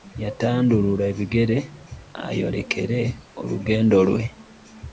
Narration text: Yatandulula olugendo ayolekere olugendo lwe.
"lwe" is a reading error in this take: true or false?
false